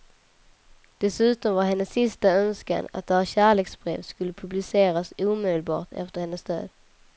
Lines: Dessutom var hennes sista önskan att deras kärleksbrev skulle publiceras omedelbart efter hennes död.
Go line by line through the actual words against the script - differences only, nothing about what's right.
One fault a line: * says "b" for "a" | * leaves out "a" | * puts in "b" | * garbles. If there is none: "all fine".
all fine